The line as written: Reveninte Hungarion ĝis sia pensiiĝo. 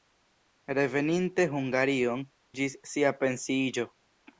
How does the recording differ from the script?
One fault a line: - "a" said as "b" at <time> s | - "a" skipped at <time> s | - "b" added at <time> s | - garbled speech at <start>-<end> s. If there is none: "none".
none